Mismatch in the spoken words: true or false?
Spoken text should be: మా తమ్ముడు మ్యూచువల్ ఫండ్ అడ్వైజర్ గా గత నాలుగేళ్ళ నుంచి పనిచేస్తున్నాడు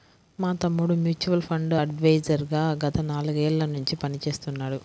false